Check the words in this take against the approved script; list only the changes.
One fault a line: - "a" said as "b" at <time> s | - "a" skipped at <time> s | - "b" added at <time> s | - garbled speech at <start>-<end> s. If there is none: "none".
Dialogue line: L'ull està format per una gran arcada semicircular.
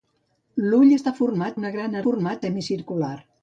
- "per" skipped at 1.6 s
- "arcada" said as "format" at 2.0 s